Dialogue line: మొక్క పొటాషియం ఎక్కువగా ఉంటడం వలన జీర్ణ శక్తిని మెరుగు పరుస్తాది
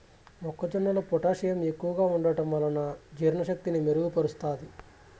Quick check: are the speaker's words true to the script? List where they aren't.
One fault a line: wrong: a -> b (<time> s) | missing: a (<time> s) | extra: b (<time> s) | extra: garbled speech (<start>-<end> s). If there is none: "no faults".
extra: జొన్నలో (0.7 s)